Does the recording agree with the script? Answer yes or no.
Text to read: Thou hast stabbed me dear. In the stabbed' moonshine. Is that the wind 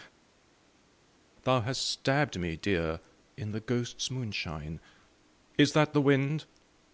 no